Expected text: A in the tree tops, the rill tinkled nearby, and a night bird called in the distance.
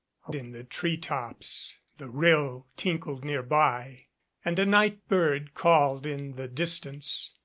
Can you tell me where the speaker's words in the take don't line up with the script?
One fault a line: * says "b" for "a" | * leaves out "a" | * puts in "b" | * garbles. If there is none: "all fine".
all fine